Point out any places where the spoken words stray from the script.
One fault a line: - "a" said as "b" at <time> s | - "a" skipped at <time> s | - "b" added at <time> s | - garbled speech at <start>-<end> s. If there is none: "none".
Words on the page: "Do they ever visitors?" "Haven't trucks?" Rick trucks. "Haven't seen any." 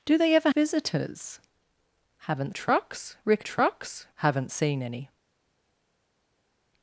none